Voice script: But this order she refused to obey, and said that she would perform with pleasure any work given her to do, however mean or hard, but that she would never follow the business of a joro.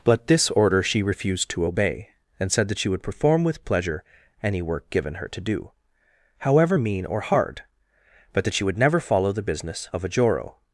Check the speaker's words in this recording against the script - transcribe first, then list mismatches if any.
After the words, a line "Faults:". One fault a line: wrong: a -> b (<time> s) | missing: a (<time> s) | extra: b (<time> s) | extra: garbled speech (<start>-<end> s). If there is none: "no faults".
But this order she refused to obey, and said that she would perform with pleasure any work given her to do, however mean or hard, but that she would never follow the business of a joro.
Faults:
no faults